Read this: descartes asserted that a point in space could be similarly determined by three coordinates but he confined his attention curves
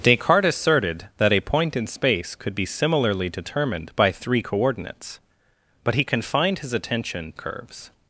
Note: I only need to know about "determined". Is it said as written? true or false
true